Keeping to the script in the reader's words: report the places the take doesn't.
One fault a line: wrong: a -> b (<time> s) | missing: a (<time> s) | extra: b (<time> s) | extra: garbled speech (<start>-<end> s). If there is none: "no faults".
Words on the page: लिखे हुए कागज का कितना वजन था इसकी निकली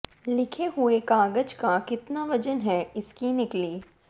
wrong: था -> है (2.6 s)